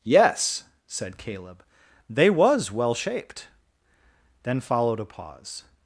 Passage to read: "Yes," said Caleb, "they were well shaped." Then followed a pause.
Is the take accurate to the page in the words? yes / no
no